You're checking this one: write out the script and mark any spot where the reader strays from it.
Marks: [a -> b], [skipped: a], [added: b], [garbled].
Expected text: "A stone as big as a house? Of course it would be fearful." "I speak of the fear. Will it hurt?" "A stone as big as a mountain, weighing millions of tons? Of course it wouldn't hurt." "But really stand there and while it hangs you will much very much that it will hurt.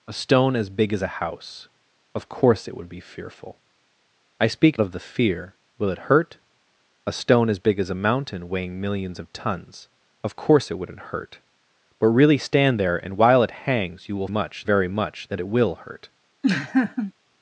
"A stone as big as a house? Of course it would be fearful." "I speak of the fear. Will it hurt?" "A stone as big as a mountain, weighing millions of tons? Of course it wouldn't hurt." "But really stand there and while it hangs you will much very much that it will hurt.